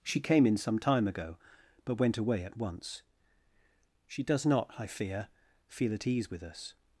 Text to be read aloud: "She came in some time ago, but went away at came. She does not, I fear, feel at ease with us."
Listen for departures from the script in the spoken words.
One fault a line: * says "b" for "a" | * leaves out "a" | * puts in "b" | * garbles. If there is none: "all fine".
* says "once" for "came"